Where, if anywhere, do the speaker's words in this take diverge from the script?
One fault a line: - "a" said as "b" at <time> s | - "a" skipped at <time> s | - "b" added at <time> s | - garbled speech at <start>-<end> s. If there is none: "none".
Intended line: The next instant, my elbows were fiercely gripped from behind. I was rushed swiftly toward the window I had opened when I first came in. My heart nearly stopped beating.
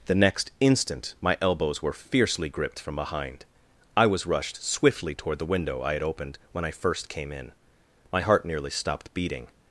none